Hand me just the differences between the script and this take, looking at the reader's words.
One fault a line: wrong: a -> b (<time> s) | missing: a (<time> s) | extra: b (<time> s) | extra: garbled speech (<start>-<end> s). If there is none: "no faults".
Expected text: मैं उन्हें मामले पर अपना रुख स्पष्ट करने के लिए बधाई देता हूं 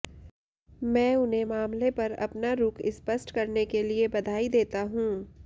no faults